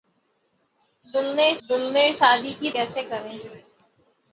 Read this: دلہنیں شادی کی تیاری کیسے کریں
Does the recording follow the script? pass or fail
fail